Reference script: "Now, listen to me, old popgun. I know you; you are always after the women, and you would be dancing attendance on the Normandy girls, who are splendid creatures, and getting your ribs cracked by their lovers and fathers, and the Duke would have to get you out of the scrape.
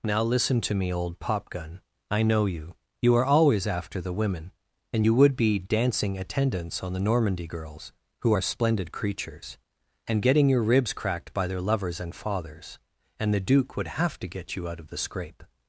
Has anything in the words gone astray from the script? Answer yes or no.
no